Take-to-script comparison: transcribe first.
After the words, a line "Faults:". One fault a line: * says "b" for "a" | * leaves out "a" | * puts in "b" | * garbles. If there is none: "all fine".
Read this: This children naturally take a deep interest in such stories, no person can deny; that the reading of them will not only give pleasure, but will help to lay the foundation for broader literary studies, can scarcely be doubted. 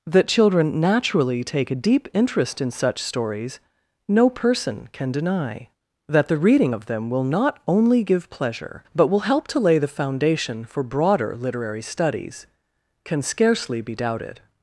That children naturally take a deep interest in such stories, no person can deny; that the reading of them will not only give pleasure, but will help to lay the foundation for broader literary studies, can scarcely be doubted.
Faults:
* says "That" for "This"